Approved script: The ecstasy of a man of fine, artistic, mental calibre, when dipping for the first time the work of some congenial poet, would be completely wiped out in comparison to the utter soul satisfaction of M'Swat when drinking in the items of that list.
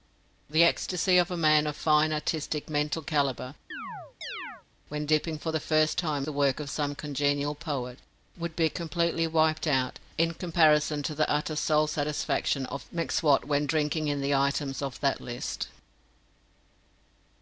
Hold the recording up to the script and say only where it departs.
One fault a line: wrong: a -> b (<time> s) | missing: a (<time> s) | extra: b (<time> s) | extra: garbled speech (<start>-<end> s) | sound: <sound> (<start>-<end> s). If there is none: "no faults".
sound: chirp (3.7-4.6 s)